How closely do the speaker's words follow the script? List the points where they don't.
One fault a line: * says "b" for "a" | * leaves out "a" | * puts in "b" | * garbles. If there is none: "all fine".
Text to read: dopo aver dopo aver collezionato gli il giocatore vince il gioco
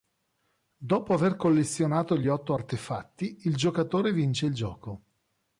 * says "collezionato gli otto artefatti" for "dopo aver collezionato gli"